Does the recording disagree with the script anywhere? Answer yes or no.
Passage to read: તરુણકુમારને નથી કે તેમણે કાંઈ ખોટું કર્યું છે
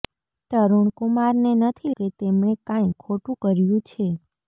no